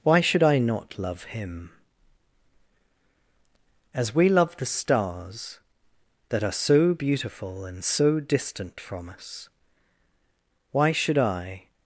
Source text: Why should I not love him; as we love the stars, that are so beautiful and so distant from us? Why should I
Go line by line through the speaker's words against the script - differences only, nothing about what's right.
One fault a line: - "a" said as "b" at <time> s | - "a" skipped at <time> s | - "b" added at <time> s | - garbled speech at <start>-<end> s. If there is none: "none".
none